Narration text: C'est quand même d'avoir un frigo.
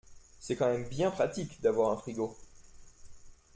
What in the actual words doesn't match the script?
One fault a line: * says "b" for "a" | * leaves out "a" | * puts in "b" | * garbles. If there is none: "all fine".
* puts in "bien pratique"